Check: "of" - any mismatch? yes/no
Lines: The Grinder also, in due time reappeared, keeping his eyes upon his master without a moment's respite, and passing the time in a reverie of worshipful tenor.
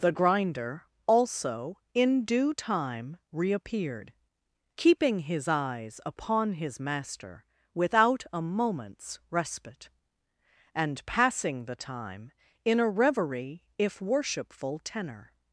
yes